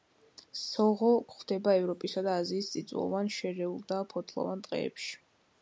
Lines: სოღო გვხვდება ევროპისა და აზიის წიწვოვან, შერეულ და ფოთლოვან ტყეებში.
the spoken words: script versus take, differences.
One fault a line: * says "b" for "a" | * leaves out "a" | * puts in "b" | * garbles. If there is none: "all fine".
all fine